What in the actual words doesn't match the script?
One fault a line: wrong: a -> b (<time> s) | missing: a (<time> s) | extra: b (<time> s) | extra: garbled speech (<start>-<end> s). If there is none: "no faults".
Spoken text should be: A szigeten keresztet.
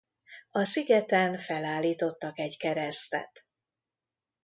extra: felállítottak egy (1.4 s)